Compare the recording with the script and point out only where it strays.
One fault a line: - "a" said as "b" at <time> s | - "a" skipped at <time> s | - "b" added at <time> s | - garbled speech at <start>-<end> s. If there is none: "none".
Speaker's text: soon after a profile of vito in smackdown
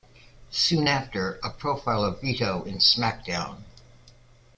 none